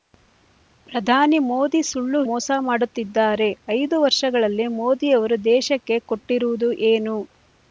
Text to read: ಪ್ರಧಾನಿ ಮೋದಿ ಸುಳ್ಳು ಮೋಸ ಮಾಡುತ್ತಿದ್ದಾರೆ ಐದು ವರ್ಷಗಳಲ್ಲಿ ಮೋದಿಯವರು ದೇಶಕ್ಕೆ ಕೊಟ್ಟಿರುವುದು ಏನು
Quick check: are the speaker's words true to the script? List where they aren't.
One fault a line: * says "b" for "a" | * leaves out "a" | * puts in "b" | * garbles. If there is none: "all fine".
all fine